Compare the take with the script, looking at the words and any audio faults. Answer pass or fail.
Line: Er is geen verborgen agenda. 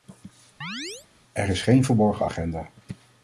fail